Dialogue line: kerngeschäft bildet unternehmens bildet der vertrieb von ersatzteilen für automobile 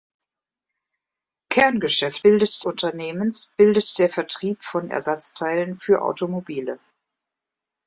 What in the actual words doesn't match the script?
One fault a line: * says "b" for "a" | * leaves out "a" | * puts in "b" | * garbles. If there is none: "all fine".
all fine